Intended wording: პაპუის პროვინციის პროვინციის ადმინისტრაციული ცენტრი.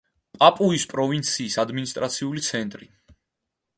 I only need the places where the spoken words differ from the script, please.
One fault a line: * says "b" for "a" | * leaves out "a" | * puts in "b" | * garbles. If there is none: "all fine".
* leaves out "პროვინციის"